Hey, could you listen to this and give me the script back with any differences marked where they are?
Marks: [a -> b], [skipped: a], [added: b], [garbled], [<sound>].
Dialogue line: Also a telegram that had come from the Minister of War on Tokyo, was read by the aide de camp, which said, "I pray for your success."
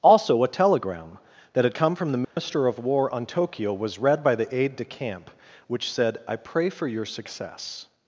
Also a telegram that had come from the Minister [dropout] of War on Tokyo, was read by the aide de camp, which said, "I pray for your success."